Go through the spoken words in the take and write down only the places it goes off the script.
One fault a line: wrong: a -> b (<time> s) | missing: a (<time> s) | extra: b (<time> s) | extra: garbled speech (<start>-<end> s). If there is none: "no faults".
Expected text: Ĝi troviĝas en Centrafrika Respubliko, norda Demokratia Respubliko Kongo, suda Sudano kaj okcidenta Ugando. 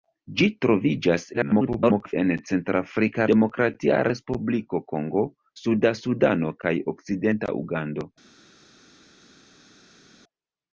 extra: garbled speech (1.3-2.1 s)
missing: Respubliko norda (3.3 s)